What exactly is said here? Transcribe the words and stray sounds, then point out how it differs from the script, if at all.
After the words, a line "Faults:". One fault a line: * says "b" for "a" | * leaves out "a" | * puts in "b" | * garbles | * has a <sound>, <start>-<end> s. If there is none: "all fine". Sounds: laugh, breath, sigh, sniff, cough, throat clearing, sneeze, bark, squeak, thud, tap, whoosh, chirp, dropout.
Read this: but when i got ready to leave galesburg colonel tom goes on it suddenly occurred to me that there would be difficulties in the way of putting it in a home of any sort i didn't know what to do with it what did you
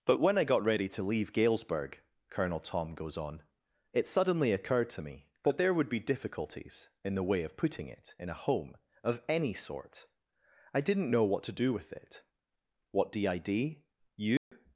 but when i got ready to leave galesburg colonel tom goes on it suddenly occurred to me that there would be difficulties in the way of putting it in a home of any sort i didn't know what to do with it what did you
Faults:
* has a dropout, 14.4-14.5 s